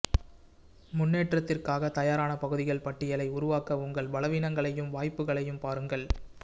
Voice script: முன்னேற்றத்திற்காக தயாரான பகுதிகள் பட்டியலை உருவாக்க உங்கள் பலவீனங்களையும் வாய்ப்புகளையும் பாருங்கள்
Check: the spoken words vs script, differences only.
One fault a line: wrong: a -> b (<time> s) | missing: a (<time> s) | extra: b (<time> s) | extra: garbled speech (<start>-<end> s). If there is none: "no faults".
no faults